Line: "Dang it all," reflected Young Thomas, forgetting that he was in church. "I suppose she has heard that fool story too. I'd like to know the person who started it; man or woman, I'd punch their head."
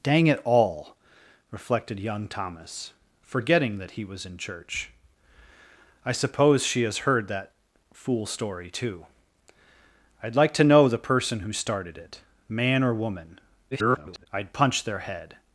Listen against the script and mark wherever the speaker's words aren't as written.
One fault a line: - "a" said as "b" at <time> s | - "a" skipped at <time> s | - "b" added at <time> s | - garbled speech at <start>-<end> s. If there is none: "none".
- garbled speech at 13.7-14.3 s